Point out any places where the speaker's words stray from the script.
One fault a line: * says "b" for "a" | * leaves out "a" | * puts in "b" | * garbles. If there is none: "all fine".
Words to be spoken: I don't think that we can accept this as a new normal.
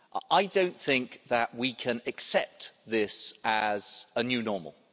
all fine